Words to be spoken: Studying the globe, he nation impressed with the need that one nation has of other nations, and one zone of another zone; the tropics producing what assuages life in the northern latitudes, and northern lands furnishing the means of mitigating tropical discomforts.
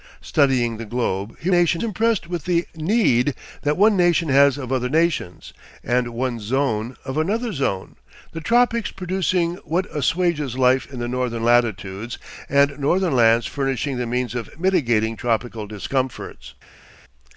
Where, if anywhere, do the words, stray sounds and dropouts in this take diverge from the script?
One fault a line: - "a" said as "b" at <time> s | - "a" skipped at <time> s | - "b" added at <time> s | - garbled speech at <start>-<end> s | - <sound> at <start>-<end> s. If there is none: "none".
none